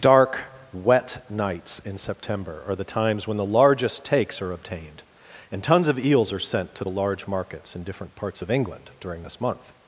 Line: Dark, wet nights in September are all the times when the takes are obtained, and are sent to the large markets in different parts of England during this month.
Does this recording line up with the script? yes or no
no